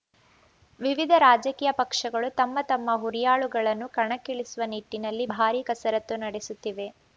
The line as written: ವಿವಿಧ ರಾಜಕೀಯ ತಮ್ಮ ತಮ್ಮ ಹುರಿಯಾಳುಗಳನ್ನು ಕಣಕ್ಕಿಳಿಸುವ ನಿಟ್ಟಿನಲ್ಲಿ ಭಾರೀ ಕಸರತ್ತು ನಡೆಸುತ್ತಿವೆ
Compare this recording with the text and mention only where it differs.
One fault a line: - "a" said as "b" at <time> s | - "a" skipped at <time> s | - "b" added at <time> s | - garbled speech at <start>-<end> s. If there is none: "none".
- "ಪಕ್ಷಗಳು" added at 1.8 s